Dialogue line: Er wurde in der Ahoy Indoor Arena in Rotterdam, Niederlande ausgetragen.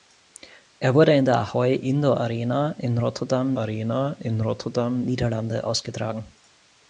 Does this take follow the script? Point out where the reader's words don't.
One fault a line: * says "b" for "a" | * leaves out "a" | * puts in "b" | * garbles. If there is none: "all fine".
* puts in "Arena in Rotterdam"